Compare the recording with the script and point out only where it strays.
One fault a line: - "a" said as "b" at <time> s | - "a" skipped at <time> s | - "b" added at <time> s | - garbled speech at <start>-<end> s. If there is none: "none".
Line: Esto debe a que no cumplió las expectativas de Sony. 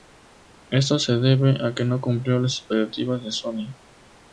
- "se" added at 1.0 s